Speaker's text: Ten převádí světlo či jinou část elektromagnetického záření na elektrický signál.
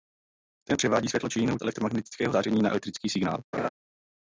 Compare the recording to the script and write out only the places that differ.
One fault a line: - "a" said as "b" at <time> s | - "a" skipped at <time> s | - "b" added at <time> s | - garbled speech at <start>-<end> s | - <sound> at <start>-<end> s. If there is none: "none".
- "část" skipped at 1.6 s
- laugh at 3.5-3.7 s